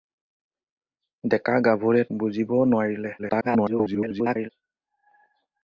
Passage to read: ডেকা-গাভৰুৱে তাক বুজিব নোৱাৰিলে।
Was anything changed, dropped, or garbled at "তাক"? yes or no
yes